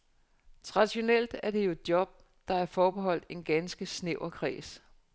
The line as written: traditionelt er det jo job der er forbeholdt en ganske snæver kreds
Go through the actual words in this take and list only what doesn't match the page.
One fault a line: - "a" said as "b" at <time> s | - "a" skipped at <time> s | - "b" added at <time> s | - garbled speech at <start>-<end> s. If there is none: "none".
none